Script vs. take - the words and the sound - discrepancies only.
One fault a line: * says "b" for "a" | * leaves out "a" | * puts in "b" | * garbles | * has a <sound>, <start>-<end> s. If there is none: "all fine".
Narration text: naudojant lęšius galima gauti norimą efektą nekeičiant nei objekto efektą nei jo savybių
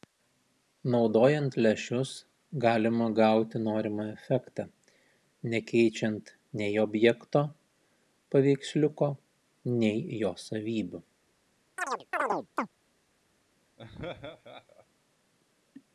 * says "paveiksliuko" for "efektą"
* has a chirp, 11.8-12.7 s
* has a laugh, 13.8-14.9 s